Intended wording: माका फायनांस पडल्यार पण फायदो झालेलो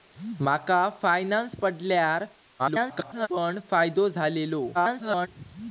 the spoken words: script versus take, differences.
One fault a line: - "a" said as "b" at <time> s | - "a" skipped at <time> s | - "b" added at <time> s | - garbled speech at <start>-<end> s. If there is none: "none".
- garbled speech at 2.6-3.3 s
- garbled speech at 4.7-5.3 s